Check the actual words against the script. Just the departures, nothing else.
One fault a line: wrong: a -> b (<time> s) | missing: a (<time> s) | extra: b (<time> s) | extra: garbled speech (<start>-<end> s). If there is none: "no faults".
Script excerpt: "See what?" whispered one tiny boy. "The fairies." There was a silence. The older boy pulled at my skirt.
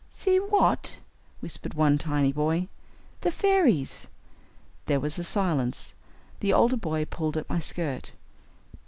no faults